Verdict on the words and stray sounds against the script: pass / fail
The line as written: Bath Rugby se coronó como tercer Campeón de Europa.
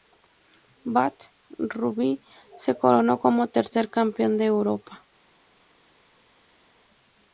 pass